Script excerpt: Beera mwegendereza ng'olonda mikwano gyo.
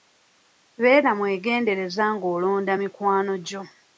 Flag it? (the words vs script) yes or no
no